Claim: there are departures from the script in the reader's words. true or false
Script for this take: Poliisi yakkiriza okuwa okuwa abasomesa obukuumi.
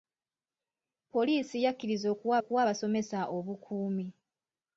false